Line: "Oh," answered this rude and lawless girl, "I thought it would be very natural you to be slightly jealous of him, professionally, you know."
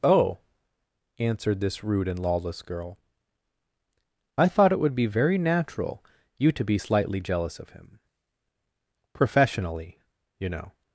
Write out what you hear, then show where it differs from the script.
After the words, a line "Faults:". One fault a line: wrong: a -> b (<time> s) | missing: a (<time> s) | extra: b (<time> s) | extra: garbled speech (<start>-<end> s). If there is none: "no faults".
"Oh," answered this rude and lawless girl, "I thought it would be very natural you to be slightly jealous of him, professionally, you know."
Faults:
no faults